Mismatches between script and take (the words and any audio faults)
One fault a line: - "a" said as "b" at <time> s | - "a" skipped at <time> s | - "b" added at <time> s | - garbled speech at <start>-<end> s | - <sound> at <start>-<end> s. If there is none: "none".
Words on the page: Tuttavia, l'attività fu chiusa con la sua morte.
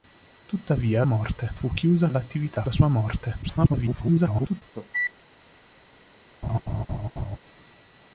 - "l'attività" said as "morte" at 1.0 s
- "con" said as "l'attività" at 2.1 s
- garbled speech at 3.4-4.6 s
- cough at 4.7-5.1 s
- laugh at 6.4-7.4 s